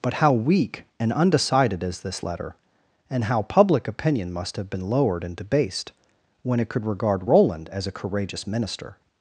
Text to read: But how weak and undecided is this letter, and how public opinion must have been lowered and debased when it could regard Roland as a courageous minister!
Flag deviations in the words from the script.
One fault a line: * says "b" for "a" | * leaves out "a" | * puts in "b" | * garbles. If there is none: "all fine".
all fine